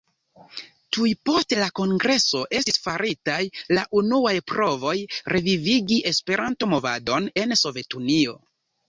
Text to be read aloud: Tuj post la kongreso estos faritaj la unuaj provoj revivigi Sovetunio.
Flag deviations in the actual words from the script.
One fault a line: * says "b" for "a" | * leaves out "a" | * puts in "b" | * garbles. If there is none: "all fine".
* says "estis" for "estos"
* puts in "Esperanto movadon en"